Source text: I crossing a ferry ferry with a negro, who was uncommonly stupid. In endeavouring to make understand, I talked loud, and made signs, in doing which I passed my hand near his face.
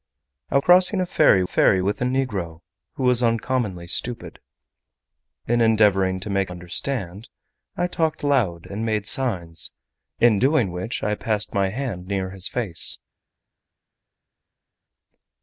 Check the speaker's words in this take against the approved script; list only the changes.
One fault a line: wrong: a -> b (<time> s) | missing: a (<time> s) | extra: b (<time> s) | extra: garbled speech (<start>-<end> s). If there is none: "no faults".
no faults